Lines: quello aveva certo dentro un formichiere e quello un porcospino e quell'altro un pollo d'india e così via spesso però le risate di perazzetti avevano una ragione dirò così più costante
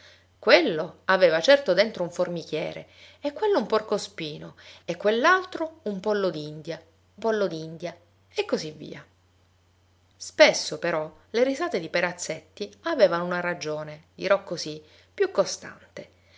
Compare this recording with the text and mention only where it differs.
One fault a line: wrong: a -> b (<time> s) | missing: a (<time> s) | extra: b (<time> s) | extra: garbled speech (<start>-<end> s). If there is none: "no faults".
extra: pollo d'india (7.2 s)